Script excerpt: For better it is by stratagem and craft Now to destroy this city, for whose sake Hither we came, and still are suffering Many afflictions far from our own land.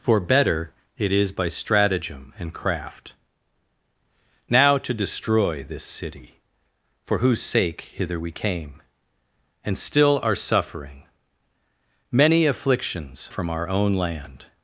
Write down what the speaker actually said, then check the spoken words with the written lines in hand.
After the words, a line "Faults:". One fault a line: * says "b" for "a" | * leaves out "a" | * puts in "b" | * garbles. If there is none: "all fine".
For better it is by stratagem and craft Now to destroy this city, for whose sake Hither we came, and still are suffering Many afflictions from our own land.
Faults:
* leaves out "far"